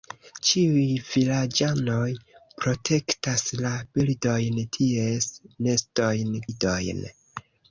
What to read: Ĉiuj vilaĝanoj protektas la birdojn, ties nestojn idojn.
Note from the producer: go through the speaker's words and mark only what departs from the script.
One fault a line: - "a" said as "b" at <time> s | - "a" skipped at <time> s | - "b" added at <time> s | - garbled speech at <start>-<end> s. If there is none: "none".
none